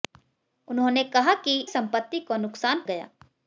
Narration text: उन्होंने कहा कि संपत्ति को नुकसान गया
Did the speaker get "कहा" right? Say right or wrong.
right